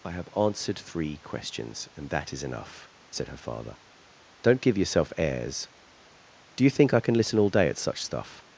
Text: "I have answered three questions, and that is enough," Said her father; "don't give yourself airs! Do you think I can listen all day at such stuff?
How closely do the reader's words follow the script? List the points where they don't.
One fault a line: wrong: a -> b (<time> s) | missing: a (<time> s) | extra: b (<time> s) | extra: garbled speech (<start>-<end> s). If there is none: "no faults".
no faults